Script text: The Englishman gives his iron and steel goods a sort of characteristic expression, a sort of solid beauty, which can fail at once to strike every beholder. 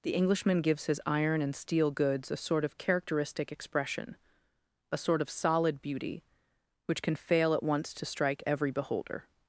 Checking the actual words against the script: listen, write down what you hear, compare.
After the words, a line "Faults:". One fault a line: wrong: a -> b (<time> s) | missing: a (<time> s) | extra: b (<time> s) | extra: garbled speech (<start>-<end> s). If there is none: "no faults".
The Englishman gives his iron and steel goods a sort of characteristic expression, a sort of solid beauty, which can fail at once to strike every beholder.
Faults:
no faults